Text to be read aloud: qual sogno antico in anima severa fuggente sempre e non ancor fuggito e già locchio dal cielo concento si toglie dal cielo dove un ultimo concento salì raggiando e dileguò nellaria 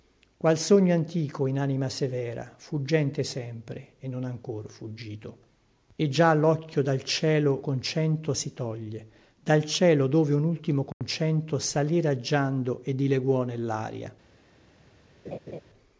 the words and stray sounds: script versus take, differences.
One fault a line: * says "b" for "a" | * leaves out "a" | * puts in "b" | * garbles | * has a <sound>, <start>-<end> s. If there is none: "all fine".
* has a dropout, 10.9-11.0 s
* has a laugh, 15.2-15.6 s